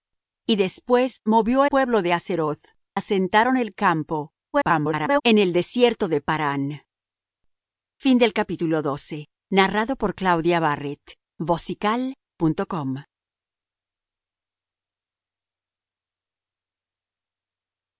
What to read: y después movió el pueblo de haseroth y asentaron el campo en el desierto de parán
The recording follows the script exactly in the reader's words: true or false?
false